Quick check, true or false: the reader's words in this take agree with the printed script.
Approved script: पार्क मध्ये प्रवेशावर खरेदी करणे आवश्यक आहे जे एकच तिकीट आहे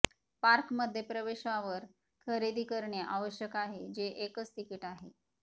true